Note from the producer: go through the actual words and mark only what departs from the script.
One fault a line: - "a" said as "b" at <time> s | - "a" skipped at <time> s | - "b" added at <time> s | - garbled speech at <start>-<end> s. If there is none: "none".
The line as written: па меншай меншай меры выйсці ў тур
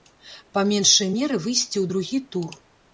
- "меншай" skipped at 1.1 s
- "другі" added at 1.9 s